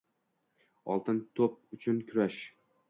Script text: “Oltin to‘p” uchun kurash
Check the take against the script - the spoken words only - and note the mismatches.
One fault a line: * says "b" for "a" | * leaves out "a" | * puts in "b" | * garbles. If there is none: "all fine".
all fine